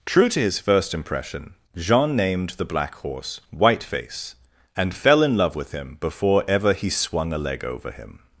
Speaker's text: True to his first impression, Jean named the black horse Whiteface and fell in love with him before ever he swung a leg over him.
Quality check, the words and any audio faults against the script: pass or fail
pass